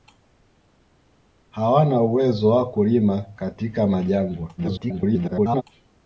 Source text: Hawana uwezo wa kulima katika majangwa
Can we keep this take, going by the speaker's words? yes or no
no